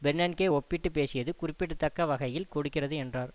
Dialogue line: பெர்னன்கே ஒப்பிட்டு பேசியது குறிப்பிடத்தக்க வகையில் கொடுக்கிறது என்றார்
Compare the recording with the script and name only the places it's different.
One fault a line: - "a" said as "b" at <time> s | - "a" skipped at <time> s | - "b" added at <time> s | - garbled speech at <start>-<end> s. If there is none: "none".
none